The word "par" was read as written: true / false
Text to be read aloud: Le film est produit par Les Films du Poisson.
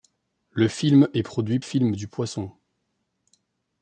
false